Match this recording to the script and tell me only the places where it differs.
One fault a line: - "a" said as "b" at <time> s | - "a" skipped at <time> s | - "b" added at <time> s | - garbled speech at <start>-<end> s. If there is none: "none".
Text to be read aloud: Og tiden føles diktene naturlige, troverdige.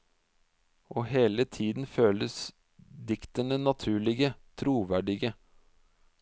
- "hele" added at 1.1 s